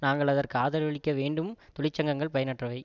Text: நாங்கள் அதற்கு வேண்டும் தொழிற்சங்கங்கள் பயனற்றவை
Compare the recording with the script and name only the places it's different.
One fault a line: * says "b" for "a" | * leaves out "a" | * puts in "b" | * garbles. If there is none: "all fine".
* puts in "ஆதரவளிக்க"